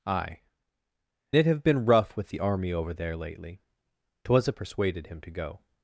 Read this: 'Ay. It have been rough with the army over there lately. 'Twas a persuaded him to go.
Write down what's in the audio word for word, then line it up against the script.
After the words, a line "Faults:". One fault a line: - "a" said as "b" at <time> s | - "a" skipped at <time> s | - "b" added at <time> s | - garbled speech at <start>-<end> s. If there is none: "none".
'Ay. It have been rough with the army over there lately. 'Twas a persuaded him to go.
Faults:
none